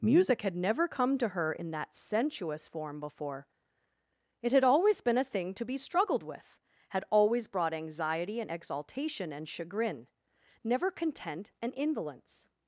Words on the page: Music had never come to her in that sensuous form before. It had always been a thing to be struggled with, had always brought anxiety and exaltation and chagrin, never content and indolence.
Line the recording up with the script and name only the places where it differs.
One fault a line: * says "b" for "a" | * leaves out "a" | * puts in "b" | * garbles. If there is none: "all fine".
all fine